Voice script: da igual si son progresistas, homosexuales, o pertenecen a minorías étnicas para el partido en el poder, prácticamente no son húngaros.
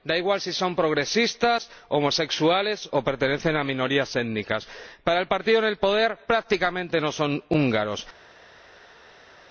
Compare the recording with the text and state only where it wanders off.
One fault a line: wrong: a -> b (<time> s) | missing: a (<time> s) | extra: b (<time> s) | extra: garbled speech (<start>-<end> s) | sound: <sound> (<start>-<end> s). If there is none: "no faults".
no faults